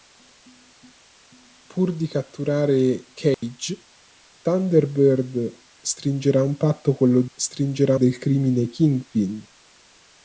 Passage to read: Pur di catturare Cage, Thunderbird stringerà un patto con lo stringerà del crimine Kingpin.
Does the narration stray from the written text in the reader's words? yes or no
no